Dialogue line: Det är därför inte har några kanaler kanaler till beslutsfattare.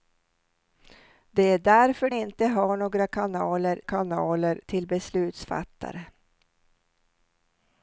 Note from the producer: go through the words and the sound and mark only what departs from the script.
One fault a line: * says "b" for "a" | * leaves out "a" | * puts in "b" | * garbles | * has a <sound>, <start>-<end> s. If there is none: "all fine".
all fine